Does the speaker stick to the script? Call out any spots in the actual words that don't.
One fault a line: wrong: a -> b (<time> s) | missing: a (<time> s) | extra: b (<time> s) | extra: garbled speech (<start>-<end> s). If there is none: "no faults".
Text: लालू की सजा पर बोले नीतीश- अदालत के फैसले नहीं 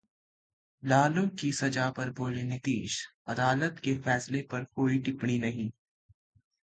extra: पर कोई टिप्पणी (4.4 s)